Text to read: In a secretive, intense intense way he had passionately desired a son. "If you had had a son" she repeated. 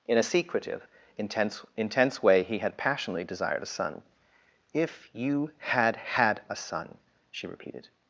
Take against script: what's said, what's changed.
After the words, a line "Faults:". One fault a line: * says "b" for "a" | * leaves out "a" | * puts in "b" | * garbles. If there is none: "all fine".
In a secretive, intense intense way he had passionately desired a son. "If you had had a son" she repeated.
Faults:
all fine